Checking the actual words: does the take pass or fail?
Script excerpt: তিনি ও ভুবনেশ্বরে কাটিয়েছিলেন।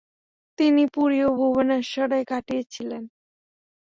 fail